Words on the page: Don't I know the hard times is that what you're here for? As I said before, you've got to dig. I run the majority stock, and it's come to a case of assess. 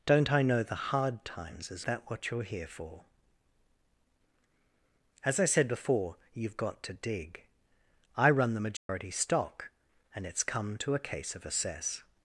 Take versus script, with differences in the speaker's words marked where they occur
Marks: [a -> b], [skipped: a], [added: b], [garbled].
Don't I know the hard times is that what you're here for? As I said before, you've got to dig. I run the majority stock, and it's come to a case of assess.